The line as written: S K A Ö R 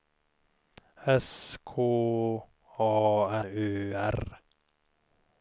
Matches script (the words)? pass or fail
pass